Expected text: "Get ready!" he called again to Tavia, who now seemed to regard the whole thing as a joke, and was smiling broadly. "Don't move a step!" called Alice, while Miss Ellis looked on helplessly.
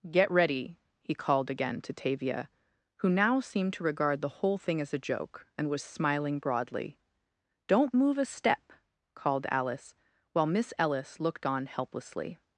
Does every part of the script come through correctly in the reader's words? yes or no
yes